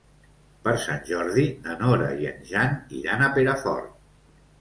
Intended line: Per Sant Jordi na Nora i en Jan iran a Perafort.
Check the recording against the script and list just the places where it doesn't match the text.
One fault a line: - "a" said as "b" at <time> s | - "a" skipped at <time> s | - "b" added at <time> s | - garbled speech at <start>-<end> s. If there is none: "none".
none